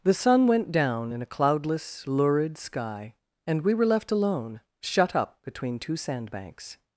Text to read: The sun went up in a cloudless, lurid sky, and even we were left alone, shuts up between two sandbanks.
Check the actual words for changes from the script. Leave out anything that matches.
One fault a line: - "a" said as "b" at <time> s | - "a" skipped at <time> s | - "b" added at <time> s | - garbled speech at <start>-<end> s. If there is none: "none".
- "up" said as "down" at 0.7 s
- "even" skipped at 3.6 s
- "shuts" said as "shut" at 4.8 s